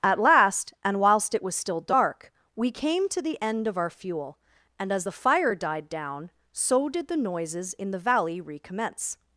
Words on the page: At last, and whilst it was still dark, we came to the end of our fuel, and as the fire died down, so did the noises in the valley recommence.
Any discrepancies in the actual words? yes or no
no